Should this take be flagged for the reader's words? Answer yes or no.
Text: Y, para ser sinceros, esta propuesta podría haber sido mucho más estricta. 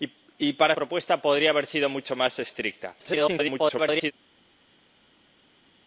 yes